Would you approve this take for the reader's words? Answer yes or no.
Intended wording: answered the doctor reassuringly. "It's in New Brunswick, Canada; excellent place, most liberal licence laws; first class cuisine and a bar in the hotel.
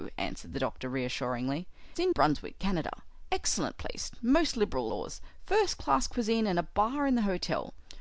no